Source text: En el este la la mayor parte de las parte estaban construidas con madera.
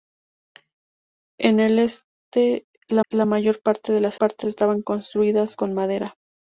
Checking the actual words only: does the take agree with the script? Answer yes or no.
yes